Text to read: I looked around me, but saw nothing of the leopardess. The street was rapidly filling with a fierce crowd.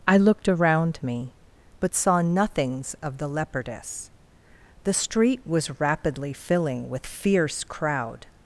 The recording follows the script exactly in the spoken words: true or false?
false